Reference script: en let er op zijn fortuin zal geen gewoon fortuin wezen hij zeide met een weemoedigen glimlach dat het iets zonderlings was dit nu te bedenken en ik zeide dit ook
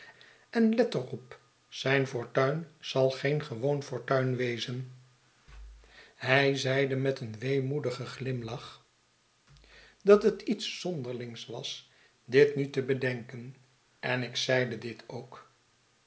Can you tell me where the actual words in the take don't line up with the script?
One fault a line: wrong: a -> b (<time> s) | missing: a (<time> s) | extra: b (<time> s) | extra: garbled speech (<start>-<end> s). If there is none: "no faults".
no faults